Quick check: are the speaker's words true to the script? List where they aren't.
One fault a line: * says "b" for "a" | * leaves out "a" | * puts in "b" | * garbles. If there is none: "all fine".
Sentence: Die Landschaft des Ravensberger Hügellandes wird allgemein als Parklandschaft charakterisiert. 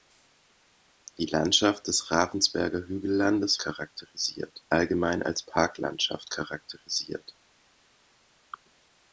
* says "charakterisiert" for "wird"